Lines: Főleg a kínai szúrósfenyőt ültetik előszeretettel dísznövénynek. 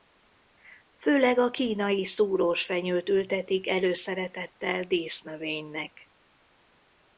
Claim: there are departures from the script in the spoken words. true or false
false